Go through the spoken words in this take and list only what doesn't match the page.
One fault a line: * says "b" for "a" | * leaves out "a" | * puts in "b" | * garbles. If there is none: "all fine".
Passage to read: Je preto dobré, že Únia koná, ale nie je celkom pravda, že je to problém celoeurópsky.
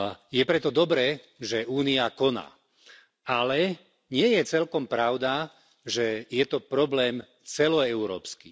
all fine